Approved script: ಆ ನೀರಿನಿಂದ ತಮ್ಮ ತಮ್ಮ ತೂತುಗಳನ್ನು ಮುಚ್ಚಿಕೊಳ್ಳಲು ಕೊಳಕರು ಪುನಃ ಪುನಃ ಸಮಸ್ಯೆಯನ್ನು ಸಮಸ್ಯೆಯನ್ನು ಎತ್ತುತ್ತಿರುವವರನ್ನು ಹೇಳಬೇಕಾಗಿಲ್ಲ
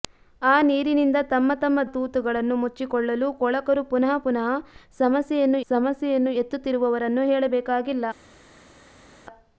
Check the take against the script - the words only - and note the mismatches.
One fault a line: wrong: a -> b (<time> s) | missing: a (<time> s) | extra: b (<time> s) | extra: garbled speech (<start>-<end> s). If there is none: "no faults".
no faults